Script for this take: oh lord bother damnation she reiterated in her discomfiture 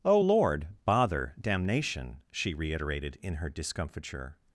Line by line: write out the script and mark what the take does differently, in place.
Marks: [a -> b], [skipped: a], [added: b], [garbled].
oh lord bother damnation she reiterated in her discomfiture